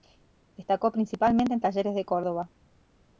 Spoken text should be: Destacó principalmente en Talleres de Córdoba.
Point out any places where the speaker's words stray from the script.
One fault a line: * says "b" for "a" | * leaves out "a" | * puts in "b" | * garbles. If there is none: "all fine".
all fine